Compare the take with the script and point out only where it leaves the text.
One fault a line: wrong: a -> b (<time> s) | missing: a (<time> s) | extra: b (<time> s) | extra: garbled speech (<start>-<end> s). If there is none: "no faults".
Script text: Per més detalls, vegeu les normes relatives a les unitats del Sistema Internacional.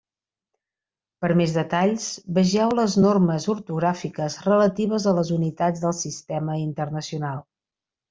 extra: ortogràfiques (3.5 s)